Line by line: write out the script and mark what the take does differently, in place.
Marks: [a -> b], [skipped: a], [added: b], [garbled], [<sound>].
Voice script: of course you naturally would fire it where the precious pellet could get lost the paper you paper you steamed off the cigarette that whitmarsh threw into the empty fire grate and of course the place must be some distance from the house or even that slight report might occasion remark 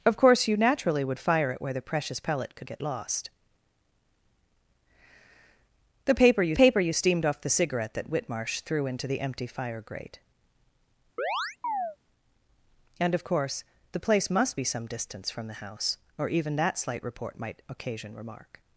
of course you naturally would fire it where the precious pellet could get lost the paper you paper you steamed off the cigarette that whitmarsh threw into the empty fire grate [chirp] and of course the place must be some distance from the house or even that slight report might occasion remark